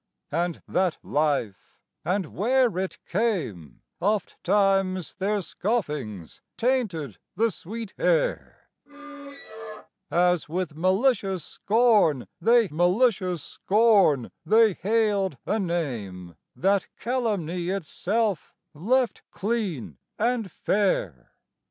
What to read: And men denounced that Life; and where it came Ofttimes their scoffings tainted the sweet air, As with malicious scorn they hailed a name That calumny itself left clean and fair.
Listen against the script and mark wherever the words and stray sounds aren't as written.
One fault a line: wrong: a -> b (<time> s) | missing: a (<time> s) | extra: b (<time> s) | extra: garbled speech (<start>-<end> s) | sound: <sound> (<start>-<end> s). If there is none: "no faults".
missing: men denounced (0.6 s)
sound: squeak (8.9-9.9 s)
extra: malicious scorn they (12.7 s)